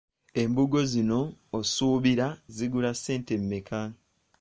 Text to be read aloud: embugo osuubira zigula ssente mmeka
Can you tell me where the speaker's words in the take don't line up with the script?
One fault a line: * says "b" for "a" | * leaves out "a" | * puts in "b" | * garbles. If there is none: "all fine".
* puts in "zino"